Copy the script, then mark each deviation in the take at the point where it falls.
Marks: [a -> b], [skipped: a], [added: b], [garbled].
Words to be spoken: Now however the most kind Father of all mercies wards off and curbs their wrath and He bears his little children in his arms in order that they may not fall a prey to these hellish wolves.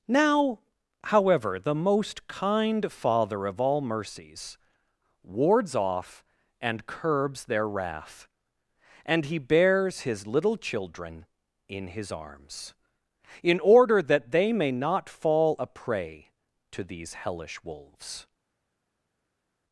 Now however the most kind Father of all mercies wards off and curbs their wrath and He bears his little children in his arms in order that they may not fall a prey to these hellish wolves.